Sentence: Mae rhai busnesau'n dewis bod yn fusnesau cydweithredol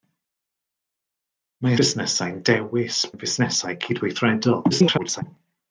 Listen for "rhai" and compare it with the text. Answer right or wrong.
wrong